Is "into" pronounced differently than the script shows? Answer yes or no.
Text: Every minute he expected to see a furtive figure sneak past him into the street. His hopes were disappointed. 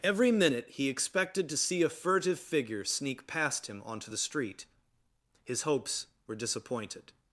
yes